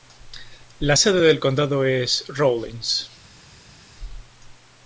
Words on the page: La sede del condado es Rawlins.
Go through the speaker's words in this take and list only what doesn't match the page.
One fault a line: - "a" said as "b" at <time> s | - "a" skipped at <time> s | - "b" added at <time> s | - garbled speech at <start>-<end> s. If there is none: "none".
none